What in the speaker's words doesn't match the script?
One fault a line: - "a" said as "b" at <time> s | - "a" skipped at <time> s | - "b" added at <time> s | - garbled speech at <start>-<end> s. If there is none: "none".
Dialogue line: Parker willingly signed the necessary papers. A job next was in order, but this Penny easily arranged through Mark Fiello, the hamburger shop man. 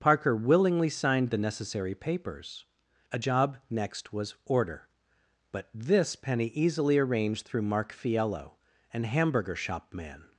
- "in" skipped at 4.4 s
- "the" said as "an" at 8.9 s